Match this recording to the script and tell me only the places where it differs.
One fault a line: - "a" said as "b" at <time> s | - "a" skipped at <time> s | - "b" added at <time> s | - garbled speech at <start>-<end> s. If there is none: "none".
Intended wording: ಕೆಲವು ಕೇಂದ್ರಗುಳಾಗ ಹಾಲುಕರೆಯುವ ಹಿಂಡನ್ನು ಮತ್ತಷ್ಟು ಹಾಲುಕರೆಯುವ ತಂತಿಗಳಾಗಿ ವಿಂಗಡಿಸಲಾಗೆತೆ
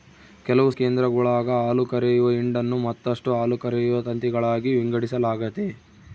none